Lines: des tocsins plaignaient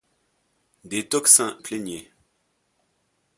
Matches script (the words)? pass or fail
pass